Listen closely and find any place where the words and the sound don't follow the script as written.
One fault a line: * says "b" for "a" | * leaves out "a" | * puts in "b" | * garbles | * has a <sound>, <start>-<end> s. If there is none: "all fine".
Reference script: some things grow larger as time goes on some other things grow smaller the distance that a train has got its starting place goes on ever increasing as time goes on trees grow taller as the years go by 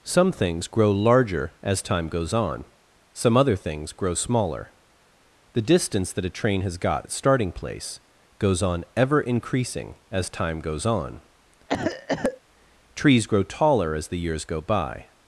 * has a cough, 11.7-12.4 s